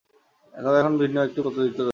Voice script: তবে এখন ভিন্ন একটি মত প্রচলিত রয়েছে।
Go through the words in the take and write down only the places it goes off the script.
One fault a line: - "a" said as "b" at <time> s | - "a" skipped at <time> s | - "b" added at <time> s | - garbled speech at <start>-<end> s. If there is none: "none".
- "মত" skipped at 1.4 s